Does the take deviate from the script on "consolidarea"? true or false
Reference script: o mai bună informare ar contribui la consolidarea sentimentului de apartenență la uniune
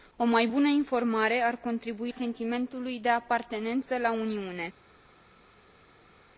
true